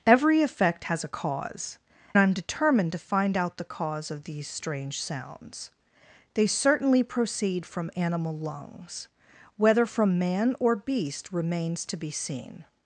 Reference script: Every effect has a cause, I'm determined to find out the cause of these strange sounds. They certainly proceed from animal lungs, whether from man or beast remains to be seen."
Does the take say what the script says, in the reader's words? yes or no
yes